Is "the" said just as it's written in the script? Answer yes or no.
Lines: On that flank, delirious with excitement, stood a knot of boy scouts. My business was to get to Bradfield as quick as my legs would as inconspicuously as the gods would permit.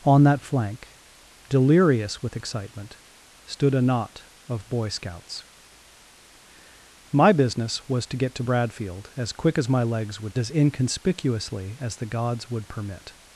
yes